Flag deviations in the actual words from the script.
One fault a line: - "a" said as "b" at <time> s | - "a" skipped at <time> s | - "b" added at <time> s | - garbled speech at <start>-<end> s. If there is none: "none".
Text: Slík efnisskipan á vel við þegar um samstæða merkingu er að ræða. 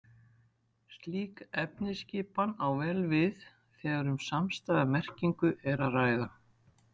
none